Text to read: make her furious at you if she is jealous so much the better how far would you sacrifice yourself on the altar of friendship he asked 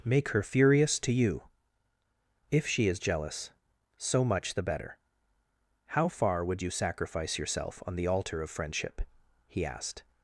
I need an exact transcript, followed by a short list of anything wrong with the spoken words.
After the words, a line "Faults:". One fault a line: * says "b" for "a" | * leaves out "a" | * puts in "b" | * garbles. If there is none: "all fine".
make her furious to you if she is jealous so much the better how far would you sacrifice yourself on the altar of friendship he asked
Faults:
* says "to" for "at"